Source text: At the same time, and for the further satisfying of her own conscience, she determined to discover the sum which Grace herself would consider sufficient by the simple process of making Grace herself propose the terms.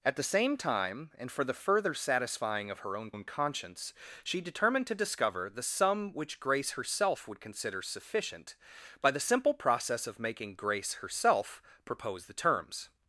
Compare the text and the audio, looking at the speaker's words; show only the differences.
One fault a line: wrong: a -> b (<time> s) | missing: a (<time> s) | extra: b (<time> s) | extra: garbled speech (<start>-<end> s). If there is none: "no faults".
extra: own (3.1 s)